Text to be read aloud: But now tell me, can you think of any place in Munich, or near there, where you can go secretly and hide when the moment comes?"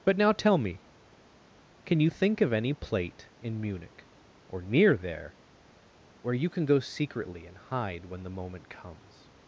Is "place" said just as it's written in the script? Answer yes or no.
no